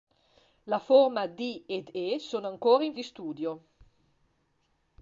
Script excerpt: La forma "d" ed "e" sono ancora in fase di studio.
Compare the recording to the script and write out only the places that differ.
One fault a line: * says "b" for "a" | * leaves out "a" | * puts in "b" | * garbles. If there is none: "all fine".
* leaves out "fase"